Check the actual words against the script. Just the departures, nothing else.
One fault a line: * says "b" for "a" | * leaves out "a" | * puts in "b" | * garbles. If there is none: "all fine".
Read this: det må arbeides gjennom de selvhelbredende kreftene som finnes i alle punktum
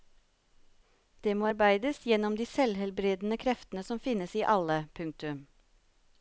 all fine